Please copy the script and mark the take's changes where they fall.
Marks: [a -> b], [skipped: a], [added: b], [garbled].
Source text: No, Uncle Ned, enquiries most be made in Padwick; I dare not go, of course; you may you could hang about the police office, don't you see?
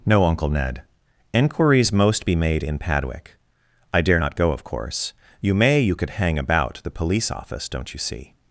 No, Uncle Ned, enquiries most be made in Padwick; I dare not go, of course; you may you could hang about the police office, don't you see?